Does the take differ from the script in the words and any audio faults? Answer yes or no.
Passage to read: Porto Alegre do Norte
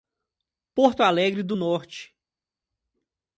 no